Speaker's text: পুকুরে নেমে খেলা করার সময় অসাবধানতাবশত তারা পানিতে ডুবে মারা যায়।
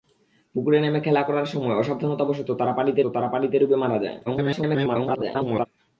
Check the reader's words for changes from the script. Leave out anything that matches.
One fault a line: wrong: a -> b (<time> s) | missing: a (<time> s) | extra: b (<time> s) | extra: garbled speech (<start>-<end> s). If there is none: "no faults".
extra: তারা পানিতে (3.1 s)
extra: garbled speech (4.3-5.7 s)